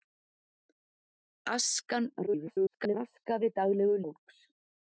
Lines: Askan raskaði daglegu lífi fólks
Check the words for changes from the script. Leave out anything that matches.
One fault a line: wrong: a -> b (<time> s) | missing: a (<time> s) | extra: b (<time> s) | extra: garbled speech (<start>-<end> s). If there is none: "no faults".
extra: garbled speech (2.3-3.0 s)
missing: lífi (4.0 s)